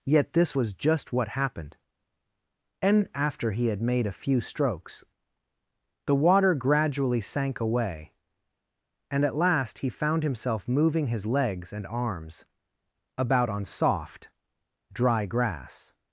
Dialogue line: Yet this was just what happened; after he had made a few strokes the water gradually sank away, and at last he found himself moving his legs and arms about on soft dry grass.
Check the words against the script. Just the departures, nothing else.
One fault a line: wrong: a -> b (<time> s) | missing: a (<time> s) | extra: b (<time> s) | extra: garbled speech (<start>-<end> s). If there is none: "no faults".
extra: and (2.8 s)